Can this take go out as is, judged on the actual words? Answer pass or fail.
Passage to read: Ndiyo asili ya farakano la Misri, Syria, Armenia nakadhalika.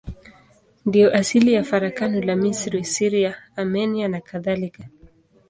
pass